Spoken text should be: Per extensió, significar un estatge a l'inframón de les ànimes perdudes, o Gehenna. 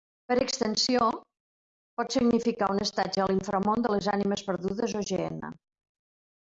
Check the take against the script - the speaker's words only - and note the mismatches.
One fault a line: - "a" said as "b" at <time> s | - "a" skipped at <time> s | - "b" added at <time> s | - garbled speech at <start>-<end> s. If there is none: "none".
- "pot" added at 2.0 s